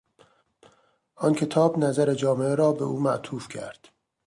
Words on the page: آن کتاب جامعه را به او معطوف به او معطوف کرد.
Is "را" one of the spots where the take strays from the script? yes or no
no